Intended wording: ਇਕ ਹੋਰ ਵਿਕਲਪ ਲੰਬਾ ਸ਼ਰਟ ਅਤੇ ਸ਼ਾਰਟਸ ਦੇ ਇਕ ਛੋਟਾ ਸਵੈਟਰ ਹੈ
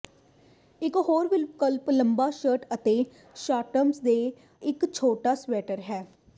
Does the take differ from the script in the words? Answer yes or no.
no